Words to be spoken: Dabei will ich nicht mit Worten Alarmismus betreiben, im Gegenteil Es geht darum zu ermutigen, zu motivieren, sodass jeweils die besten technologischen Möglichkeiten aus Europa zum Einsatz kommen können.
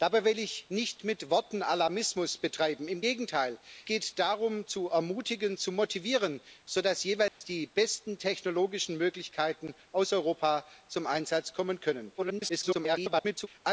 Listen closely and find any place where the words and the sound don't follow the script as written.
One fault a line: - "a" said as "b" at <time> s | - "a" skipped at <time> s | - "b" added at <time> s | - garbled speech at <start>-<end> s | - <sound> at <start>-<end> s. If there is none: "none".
- "Es" skipped at 3.6 s
- dropout at 7.3-7.4 s
- garbled speech at 12.2-13.5 s